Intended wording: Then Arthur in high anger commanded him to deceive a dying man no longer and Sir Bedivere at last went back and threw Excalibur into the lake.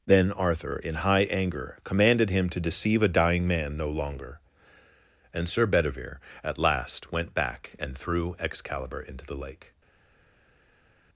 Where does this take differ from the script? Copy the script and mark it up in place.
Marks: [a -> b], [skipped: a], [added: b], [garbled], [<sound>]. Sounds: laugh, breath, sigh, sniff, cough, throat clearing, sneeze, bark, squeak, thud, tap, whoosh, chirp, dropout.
Then Arthur in high anger commanded him to deceive a dying man no longer and Sir Bedivere at last went back and threw Excalibur into the lake.